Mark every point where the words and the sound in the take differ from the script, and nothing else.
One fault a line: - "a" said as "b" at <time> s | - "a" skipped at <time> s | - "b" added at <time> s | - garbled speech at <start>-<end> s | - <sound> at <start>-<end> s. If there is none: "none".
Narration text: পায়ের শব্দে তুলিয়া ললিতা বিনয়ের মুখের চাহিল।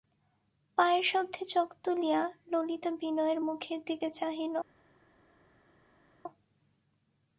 - "চোখ" added at 1.4 s
- "দিকে" added at 3.9 s